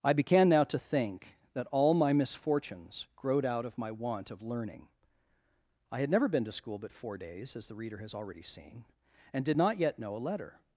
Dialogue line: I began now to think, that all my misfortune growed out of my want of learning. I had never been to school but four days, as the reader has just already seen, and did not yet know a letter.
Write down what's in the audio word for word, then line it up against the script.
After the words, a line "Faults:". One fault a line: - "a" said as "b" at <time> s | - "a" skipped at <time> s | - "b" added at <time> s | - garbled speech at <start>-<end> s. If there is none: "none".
I began now to think, that all my misfortunes growed out of my want of learning. I had never been to school but four days, as the reader has already seen, and did not yet know a letter.
Faults:
- "misfortune" said as "misfortunes" at 2.1 s
- "just" skipped at 8.2 s